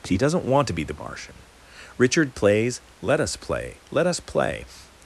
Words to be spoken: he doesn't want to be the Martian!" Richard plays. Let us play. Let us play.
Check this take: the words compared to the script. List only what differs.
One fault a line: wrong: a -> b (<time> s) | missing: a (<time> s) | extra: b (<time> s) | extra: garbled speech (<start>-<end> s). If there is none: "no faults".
no faults